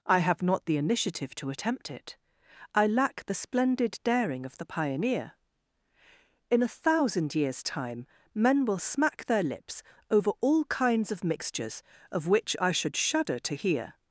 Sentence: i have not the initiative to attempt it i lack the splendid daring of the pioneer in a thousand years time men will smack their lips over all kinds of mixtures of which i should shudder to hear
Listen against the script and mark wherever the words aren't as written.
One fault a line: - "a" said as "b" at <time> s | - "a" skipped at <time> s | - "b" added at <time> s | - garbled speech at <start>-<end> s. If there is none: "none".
none